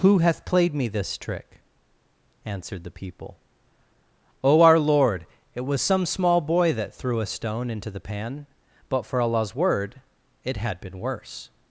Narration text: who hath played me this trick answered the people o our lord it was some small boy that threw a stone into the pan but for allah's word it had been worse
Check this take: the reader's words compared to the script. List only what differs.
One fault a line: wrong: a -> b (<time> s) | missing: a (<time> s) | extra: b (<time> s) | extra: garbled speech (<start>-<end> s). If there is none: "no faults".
no faults